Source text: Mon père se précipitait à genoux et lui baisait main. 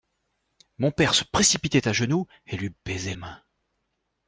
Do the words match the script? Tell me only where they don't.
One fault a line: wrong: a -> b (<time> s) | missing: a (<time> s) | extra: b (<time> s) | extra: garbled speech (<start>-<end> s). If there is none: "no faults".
no faults